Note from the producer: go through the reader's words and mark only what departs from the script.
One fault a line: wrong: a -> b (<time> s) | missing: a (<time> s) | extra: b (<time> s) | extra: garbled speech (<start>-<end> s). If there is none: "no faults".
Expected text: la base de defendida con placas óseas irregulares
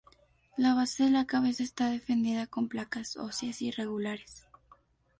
extra: la cabeza está (1.1 s)